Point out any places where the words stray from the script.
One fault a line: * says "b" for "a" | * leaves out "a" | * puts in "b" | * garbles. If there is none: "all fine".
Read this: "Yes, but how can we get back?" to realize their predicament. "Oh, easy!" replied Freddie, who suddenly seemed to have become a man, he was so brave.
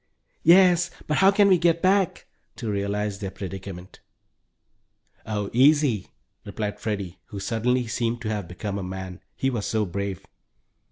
all fine